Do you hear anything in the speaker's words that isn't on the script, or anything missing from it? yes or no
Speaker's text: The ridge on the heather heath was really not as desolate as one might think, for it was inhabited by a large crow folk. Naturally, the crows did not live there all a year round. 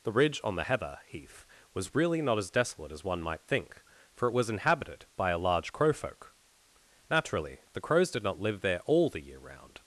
yes